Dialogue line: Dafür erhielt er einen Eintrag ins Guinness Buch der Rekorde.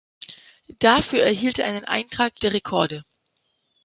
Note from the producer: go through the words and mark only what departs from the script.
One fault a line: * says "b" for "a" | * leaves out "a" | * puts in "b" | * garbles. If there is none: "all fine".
* leaves out "ins Guinness Buch"